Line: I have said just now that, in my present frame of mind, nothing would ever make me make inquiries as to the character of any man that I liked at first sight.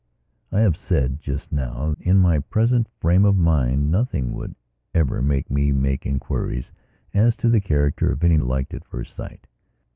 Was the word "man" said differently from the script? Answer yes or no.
yes